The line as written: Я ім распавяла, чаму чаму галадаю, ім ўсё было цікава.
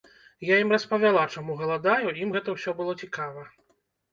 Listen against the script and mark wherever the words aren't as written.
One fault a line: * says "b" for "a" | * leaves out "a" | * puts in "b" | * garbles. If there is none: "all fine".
* leaves out "чаму"
* puts in "гэта"